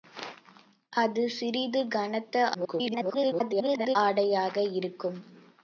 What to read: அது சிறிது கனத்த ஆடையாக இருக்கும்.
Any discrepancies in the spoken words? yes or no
yes